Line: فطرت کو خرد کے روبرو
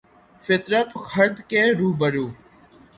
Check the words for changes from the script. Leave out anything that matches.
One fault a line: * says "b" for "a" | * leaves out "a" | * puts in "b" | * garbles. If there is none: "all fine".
* leaves out "کو"